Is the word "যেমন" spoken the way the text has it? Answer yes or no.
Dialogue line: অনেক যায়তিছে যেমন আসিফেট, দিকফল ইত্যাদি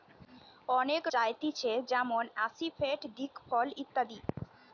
yes